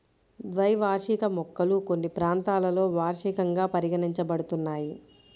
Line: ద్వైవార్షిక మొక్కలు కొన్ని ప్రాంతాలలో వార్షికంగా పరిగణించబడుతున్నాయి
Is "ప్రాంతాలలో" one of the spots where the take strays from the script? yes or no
no